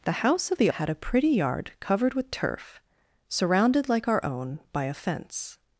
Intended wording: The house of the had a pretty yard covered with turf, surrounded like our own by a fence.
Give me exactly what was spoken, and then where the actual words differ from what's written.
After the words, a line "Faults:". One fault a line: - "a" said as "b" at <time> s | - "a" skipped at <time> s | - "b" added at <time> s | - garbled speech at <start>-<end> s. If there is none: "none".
The house of the had a pretty yard covered with turf, surrounded like our own by a fence.
Faults:
none